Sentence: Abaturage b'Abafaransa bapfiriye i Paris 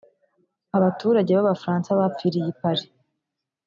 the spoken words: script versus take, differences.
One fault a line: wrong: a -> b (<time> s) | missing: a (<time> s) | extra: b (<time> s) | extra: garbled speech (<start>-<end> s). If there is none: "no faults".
no faults